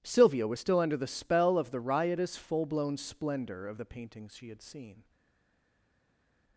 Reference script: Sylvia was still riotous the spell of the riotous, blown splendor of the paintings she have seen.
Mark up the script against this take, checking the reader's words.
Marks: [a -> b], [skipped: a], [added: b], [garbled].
Sylvia was still [riotous -> under] the spell of the riotous, [added: full] blown splendor of the paintings she [have -> had] seen.